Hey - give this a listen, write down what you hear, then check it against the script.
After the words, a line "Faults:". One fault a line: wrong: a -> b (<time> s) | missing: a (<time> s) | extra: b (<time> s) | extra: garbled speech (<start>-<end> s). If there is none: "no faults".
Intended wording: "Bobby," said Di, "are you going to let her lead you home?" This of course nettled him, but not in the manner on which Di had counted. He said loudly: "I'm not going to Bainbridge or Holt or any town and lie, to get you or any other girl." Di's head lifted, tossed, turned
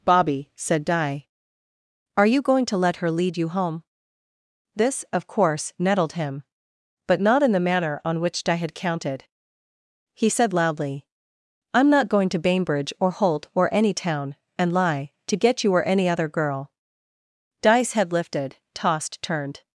"Bobby," said Di, "are you going to let her lead you home?" This of course nettled him, but not in the manner on which Di had counted. He said loudly: "I'm not going to Bainbridge or Holt or any town and lie, to get you or any other girl." Di's head lifted, tossed, turned
Faults:
no faults